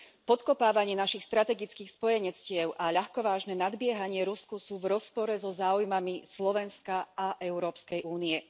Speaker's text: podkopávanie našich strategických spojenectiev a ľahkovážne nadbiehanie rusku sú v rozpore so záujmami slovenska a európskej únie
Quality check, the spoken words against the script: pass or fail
pass